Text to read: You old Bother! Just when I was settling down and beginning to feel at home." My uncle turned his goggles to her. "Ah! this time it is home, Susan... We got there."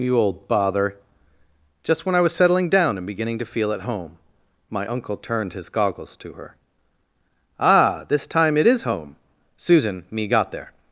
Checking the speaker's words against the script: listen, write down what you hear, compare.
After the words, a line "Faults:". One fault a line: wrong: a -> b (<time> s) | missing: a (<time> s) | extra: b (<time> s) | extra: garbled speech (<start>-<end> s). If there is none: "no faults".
You old Bother! Just when I was settling down and beginning to feel at home." My uncle turned his goggles to her. "Ah! this time it is home, Susan... Me got there."
Faults:
wrong: We -> Me (10.1 s)